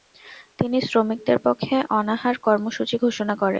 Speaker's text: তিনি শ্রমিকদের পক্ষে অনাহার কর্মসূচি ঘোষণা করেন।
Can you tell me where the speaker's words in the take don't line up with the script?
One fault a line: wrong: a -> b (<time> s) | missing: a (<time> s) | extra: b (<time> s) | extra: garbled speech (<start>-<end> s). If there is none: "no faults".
no faults